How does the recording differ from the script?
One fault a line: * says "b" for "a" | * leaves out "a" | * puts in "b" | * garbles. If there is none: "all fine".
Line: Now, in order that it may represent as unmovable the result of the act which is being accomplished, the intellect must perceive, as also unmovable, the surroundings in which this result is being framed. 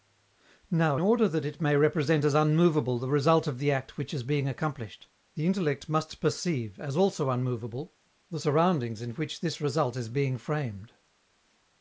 * leaves out "in"